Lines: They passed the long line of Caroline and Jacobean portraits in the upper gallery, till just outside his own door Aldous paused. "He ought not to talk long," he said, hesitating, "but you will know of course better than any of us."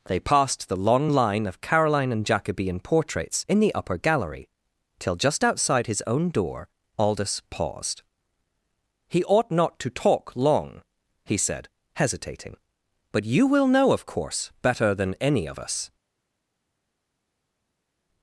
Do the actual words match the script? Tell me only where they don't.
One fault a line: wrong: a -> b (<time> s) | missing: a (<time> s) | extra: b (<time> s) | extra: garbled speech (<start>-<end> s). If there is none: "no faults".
no faults